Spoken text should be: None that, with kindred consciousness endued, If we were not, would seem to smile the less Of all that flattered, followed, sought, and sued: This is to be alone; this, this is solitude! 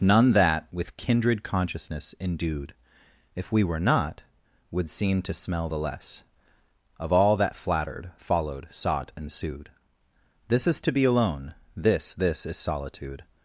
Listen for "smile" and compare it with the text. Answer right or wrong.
wrong